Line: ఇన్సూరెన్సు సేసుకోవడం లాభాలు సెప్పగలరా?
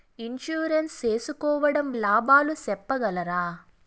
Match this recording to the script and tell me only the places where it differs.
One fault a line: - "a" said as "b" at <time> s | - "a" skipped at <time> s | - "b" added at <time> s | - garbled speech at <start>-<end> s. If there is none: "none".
none